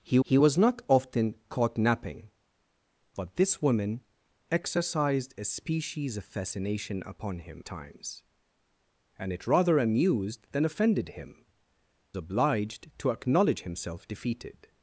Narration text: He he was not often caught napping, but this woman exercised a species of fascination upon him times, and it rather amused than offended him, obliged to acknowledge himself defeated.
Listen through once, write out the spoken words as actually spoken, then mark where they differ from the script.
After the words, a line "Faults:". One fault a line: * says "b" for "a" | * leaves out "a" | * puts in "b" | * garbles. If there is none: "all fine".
He he was not often caught napping, but this woman exercised a species of fascination upon him times, and it rather amused than offended him, obliged to acknowledge himself defeated.
Faults:
all fine